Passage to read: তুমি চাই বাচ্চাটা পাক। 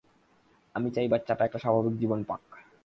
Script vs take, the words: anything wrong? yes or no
yes